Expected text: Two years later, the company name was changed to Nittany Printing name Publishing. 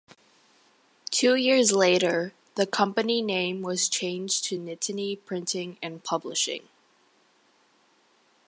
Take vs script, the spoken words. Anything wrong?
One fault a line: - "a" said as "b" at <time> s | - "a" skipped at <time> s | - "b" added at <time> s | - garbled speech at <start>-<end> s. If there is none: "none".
- "name" said as "and" at 5.8 s